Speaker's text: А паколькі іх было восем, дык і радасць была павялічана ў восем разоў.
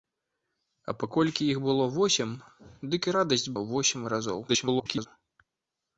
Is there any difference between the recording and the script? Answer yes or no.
yes